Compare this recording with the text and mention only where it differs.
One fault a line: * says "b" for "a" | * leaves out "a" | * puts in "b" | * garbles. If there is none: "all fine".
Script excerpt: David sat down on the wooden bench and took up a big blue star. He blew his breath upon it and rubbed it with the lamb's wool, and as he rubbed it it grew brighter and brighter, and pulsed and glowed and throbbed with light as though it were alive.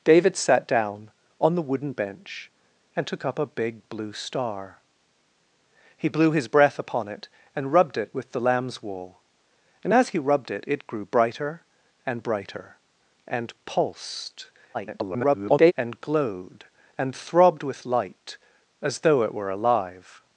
* garbles